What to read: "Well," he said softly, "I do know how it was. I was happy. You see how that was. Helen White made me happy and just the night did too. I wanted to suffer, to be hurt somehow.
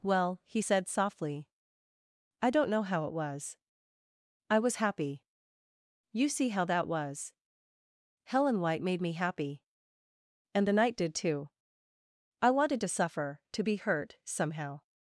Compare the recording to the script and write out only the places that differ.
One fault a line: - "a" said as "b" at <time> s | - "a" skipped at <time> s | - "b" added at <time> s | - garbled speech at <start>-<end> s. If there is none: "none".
- "do" said as "don't" at 2.5 s
- "just" skipped at 10.7 s